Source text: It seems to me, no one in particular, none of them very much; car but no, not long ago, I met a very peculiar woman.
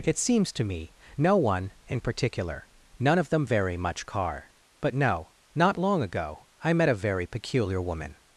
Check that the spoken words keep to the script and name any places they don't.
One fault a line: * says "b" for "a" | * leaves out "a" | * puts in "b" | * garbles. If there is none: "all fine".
all fine